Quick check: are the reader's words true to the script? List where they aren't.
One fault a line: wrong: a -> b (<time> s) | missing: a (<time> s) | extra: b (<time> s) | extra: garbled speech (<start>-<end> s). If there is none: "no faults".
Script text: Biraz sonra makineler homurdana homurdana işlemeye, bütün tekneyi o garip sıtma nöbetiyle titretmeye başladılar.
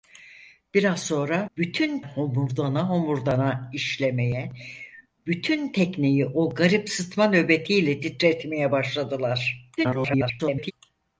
wrong: makineler -> bütün (1.6 s)
extra: garbled speech (9.8-10.7 s)